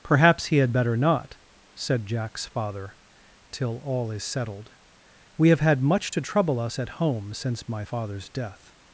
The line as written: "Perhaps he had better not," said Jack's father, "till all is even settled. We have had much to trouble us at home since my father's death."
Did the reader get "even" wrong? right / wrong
wrong